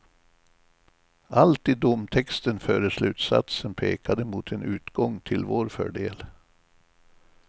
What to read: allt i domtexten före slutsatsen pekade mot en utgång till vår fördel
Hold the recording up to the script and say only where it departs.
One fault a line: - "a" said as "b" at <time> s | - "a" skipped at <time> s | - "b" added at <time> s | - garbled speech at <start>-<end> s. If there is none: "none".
none